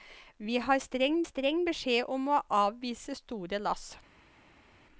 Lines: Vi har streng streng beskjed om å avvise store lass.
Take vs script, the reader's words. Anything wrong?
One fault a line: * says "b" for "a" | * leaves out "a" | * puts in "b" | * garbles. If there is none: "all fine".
all fine